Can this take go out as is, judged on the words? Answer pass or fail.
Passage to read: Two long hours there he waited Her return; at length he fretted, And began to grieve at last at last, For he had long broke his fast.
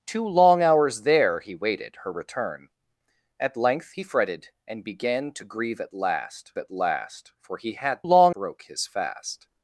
pass